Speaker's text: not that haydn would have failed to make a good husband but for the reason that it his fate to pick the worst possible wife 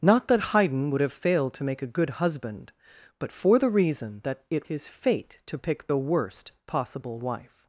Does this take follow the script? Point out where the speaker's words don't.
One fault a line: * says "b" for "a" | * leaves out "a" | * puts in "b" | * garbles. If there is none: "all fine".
all fine